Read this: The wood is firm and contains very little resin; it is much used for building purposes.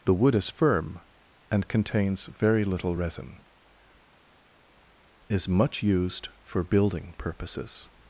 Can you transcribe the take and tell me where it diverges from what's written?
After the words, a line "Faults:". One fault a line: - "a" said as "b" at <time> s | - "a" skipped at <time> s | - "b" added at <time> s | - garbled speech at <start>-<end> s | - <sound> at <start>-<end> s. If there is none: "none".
The wood is firm and contains very little resin; is much used for building purposes.
Faults:
- "it" skipped at 3.4 s